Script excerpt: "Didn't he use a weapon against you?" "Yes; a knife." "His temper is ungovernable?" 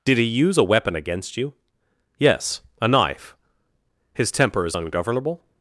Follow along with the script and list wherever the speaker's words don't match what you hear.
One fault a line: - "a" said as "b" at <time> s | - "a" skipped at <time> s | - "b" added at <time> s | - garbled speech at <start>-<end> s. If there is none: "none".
- "Didn't" said as "Did" at 0.1 s